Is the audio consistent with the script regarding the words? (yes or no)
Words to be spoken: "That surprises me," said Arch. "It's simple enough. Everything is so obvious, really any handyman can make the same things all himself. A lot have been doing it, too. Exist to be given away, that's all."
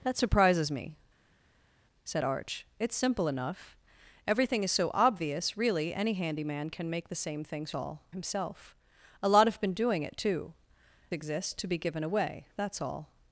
yes